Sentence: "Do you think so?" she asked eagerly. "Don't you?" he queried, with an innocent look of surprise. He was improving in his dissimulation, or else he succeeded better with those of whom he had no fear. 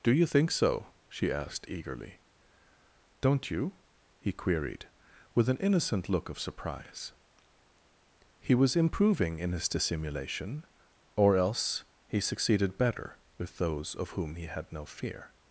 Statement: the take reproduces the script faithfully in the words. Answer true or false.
true